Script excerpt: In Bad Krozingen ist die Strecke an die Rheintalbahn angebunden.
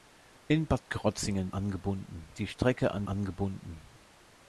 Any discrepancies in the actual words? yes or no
yes